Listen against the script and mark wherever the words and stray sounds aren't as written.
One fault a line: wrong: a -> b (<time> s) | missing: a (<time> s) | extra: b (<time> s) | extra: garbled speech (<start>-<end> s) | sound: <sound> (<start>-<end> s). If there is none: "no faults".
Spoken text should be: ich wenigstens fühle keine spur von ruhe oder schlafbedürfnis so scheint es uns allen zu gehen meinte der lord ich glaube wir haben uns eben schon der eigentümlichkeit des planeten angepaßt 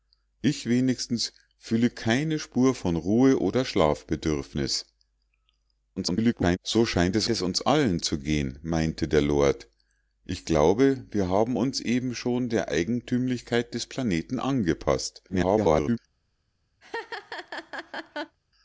extra: garbled speech (6.0-6.6 s)
extra: es (7.3 s)
extra: garbled speech (15.3-16.0 s)
sound: laugh (16.8-18.4 s)